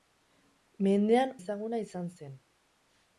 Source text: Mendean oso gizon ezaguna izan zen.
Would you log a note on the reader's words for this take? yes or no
yes